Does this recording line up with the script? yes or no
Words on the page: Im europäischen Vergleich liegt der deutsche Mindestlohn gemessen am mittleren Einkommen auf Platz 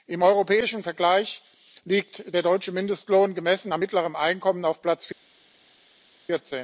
yes